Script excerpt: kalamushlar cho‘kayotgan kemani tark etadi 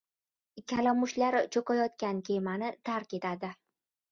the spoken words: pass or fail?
pass